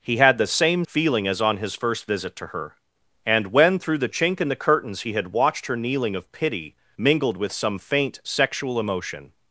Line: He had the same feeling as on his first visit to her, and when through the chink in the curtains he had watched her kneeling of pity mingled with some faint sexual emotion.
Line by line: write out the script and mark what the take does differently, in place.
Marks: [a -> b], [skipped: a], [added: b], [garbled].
He had the same feeling as on his first visit to her, and when through the chink in the curtains he had watched her kneeling of pity mingled with some faint sexual emotion.